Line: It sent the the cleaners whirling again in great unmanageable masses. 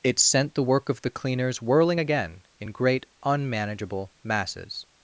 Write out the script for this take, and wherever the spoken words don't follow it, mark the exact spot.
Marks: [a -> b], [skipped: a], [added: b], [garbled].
It sent the [added: work of] the cleaners whirling again in great unmanageable masses.